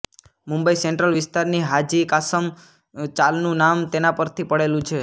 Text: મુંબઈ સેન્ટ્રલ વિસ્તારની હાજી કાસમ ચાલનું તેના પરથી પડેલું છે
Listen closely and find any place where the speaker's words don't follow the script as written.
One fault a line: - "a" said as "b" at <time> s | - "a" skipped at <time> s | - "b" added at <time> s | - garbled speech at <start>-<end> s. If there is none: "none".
- "નામ" added at 3.6 s